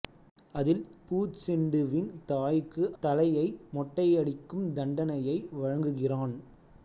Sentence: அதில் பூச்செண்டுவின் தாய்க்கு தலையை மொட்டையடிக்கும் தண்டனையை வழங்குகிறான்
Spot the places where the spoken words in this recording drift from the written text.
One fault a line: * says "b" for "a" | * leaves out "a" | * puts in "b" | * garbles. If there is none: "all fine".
all fine